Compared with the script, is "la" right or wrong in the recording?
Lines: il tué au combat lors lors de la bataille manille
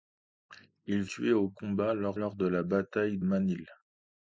right